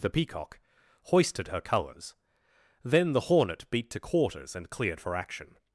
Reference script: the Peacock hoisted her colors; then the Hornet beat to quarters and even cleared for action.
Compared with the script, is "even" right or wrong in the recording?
wrong